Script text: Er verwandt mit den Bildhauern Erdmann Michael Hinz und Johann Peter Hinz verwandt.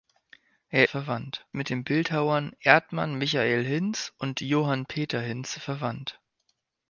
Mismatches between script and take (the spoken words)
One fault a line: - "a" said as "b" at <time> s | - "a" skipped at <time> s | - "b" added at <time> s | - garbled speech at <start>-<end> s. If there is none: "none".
none